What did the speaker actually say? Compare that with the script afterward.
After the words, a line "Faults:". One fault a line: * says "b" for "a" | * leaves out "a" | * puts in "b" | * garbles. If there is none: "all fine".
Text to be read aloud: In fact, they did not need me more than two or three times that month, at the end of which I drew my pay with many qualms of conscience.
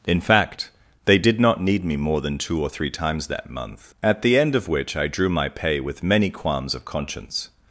In fact, they did not need me more than two or three times that month, at the end of which I drew my pay with many qualms of conscience.
Faults:
all fine